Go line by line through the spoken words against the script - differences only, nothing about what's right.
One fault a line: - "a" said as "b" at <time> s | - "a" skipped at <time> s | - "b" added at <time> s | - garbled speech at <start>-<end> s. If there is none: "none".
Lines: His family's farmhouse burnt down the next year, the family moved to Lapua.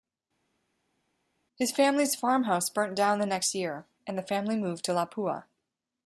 - "and" added at 4.1 s